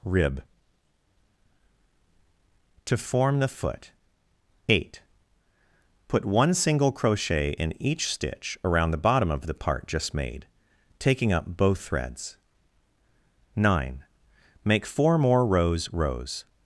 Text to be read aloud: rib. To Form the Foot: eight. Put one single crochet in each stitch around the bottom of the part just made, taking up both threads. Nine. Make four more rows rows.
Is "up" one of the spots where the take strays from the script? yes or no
no